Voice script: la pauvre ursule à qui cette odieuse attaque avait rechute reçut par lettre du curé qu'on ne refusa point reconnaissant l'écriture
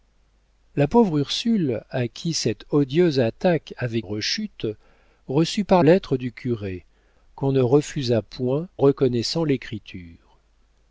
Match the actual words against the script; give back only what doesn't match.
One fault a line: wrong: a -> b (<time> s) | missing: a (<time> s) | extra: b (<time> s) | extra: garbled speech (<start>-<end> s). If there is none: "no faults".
no faults